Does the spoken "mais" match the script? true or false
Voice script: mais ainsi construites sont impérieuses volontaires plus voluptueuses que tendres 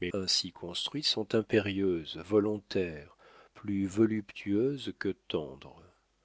true